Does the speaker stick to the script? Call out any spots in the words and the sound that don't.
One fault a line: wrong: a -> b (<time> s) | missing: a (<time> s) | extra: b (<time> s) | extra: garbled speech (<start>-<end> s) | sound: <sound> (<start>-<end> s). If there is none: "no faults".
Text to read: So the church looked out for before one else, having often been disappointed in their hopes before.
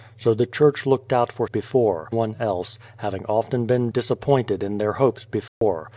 sound: dropout (5.5-5.6 s)